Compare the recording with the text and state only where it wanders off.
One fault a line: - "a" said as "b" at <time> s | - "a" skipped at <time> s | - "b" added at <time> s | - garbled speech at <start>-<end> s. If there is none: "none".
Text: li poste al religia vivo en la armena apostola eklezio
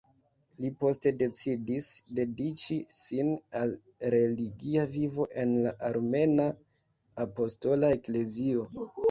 - "decidis dediĉi sin" added at 1.2 s